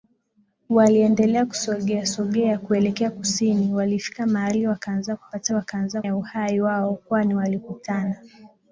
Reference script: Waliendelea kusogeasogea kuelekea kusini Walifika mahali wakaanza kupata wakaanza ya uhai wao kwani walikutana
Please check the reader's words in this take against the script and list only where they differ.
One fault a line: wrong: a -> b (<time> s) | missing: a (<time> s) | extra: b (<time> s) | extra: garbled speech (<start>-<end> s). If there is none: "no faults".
no faults